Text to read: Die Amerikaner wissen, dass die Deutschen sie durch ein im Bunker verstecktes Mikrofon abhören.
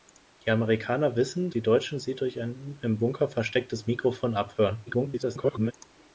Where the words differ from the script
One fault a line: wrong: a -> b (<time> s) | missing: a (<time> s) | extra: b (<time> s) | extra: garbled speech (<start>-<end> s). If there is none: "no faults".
missing: dass (1.5 s)
extra: garbled speech (4.9-5.7 s)